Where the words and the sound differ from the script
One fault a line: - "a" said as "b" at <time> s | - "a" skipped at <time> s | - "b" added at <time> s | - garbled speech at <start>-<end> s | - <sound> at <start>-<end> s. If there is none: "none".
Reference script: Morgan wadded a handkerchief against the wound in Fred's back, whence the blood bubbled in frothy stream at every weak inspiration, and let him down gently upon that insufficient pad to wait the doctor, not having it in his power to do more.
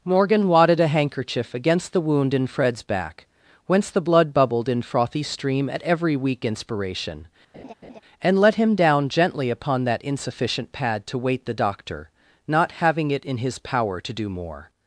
- laugh at 7.5-8.0 s